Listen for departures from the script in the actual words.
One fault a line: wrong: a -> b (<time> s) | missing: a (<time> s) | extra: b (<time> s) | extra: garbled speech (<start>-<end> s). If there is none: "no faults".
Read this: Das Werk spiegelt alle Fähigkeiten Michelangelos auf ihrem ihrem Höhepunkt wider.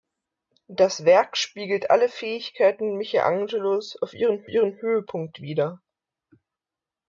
no faults